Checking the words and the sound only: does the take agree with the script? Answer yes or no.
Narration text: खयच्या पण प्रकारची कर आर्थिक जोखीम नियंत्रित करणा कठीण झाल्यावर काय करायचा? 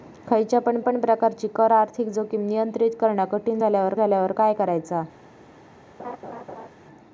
no